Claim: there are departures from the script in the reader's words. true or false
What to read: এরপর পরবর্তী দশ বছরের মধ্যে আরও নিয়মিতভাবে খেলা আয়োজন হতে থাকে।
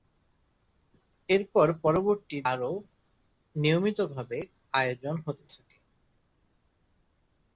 true